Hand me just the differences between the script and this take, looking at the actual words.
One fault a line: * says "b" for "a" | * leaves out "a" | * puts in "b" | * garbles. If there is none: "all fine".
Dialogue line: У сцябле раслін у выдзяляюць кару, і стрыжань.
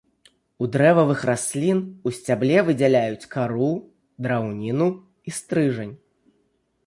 * says "дрэвавых" for "сцябле"
* puts in "сцябле"
* puts in "драўніну"